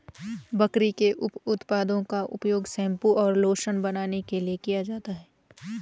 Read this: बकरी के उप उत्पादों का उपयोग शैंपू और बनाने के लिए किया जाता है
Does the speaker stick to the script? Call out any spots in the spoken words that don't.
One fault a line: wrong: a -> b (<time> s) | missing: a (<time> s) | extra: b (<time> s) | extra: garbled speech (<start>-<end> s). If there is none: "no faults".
extra: लोशन (3.4 s)